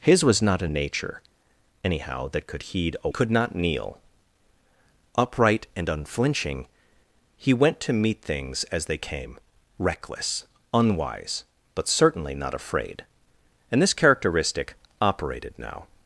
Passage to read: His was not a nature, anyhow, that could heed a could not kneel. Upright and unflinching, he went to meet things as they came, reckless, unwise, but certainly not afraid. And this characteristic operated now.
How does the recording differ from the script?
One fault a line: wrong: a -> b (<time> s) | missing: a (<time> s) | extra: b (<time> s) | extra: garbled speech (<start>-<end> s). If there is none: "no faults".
no faults